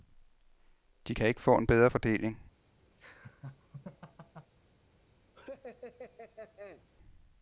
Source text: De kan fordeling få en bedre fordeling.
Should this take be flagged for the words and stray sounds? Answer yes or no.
yes